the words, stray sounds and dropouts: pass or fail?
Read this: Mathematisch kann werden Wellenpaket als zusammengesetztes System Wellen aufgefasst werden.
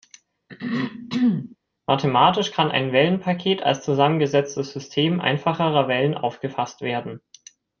fail